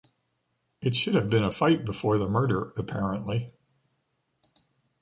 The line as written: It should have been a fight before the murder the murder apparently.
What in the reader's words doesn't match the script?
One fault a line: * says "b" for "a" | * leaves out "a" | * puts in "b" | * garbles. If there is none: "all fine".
* leaves out "the murder"